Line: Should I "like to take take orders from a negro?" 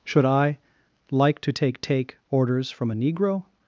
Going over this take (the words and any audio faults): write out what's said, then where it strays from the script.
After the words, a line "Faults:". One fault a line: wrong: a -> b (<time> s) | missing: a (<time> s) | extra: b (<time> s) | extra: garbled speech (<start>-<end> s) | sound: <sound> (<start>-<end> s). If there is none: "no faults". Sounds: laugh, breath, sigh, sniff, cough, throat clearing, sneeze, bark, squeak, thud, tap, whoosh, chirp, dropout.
Should I "like to take take orders from a negro?"
Faults:
no faults